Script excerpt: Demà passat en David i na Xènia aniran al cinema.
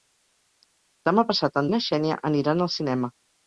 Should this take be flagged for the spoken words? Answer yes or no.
yes